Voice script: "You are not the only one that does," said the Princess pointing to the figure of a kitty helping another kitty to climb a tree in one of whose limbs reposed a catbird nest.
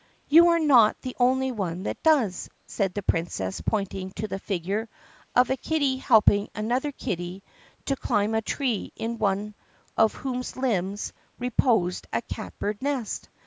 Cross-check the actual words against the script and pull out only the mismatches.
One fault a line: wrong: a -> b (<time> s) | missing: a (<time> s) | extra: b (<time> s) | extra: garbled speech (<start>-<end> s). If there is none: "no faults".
no faults